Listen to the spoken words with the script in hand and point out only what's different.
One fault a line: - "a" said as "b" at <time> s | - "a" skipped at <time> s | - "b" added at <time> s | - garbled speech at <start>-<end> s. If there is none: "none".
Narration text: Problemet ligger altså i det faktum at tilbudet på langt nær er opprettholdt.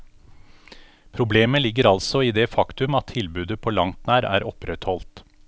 none